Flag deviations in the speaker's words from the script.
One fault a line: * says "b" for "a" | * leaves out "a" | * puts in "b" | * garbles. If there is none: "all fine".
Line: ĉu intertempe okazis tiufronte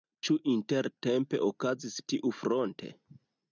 all fine